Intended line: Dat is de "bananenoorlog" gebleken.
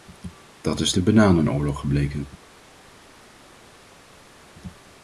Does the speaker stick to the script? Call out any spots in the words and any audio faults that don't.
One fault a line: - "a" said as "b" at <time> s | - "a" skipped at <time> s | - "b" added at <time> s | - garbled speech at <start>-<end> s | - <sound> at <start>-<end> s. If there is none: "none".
none